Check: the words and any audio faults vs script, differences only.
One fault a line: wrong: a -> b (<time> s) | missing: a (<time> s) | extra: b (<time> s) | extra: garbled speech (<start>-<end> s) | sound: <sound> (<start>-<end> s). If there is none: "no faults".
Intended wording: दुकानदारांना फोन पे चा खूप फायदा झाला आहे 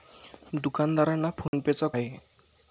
sound: dropout (1.5-1.5 s)
missing: खूप फायदा झाला (1.9 s)